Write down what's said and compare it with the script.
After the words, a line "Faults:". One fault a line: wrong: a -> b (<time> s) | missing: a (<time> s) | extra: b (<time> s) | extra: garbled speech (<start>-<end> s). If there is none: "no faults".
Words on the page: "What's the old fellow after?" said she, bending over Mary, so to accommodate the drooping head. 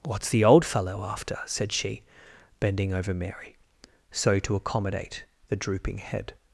"What's the old fellow after?" said she, bending over Mary, so to accommodate the drooping head.
Faults:
no faults